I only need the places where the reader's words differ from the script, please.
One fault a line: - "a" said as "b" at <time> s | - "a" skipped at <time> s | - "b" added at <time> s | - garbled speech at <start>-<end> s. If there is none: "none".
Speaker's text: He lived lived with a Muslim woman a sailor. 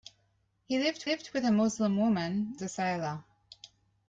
none